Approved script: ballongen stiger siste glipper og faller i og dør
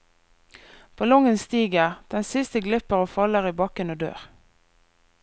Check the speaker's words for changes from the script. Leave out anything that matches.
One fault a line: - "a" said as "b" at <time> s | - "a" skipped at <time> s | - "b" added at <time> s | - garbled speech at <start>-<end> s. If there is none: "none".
- "den" added at 2.1 s
- "bakken" added at 3.6 s